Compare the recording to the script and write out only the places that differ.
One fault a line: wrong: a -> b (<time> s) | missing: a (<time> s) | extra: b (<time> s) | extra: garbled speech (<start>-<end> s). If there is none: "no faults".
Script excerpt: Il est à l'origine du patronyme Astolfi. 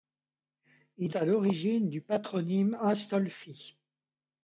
missing: est (1.1 s)